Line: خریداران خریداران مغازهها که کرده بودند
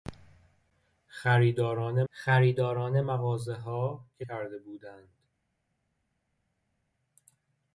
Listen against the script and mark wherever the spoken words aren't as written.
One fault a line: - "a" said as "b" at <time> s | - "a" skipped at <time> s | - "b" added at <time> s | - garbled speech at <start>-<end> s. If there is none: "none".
none